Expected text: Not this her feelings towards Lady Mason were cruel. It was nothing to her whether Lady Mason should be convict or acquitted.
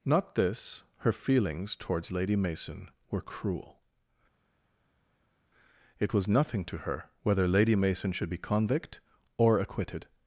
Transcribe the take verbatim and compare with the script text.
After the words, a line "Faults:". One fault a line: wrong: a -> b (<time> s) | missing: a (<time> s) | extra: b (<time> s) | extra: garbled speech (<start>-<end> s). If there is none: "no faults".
Not this her feelings towards Lady Mason were cruel. It was nothing to her whether Lady Mason should be convict or acquitted.
Faults:
no faults